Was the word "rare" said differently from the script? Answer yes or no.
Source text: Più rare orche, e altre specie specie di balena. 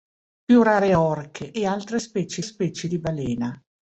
no